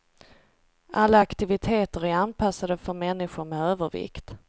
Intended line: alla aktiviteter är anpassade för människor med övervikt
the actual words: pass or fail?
pass